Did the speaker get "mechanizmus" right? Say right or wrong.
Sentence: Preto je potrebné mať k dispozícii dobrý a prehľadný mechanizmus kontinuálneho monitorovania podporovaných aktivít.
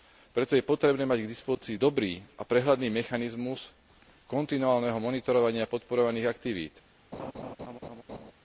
right